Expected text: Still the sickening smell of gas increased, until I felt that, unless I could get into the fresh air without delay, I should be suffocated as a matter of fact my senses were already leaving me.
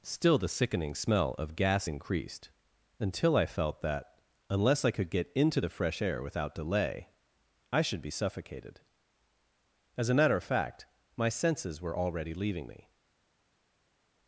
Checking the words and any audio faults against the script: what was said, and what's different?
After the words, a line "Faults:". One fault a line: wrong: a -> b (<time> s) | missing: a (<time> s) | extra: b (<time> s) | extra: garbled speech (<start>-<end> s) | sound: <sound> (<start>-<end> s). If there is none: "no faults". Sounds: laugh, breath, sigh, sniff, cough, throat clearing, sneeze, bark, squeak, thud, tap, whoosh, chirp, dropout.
Still the sickening smell of gas increased, until I felt that, unless I could get into the fresh air without delay, I should be suffocated as a matter of fact my senses were already leaving me.
Faults:
no faults